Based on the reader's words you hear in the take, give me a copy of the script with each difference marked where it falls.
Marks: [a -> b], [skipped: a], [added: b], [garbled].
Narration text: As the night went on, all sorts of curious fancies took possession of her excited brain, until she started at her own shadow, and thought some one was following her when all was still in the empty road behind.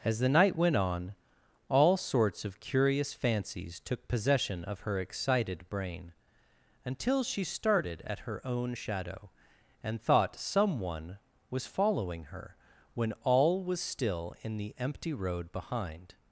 As the night went on, all sorts of curious fancies took possession of her excited brain, until she started at her own shadow, and thought some one was following her when all was still in the empty road behind.